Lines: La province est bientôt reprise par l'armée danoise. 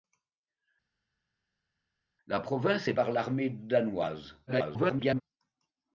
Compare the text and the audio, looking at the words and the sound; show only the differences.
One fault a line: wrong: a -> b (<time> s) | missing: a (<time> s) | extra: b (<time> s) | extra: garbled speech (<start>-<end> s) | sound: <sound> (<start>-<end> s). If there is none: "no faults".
missing: bientôt reprise (2.9 s)
extra: garbled speech (4.5-5.2 s)